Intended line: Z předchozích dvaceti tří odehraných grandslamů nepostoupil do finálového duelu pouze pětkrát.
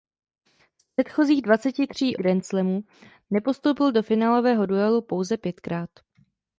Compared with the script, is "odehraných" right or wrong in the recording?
wrong